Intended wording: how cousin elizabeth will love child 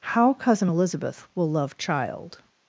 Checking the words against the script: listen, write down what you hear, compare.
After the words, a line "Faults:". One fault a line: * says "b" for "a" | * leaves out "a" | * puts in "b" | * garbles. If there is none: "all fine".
how cousin elizabeth will love child
Faults:
all fine